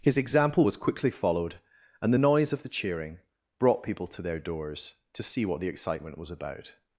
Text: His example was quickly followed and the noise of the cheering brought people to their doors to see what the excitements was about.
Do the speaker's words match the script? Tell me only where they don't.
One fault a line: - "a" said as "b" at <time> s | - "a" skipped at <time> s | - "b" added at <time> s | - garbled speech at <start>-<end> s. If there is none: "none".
- "excitements" said as "excitement" at 5.7 s